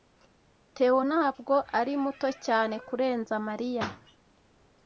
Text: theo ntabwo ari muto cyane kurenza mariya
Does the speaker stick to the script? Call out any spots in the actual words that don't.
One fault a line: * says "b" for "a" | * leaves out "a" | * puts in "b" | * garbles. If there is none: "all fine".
all fine